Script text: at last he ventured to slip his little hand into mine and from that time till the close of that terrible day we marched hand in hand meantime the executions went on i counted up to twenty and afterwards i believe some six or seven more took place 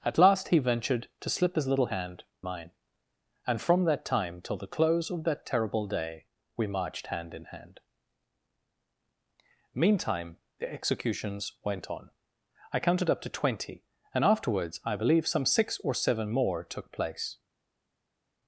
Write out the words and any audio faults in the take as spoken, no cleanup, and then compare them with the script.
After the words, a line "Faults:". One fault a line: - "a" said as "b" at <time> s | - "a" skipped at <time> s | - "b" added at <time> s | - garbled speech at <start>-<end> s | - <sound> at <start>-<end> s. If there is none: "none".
at last he ventured to slip his little hand mine and from that time till the close of that terrible day we marched hand in hand meantime the executions went on i counted up to twenty and afterwards i believe some six or seven more took place
Faults:
- "into" skipped at 2.2 s